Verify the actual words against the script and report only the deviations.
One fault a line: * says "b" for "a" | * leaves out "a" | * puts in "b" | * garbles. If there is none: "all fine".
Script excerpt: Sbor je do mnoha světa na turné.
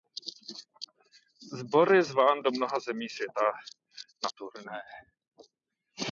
* puts in "zván"
* puts in "zemí"